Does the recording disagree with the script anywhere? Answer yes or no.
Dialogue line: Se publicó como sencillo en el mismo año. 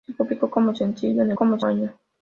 yes